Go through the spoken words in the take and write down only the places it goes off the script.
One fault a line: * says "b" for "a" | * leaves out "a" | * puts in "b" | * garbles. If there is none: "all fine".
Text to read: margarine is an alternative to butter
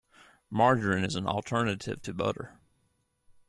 all fine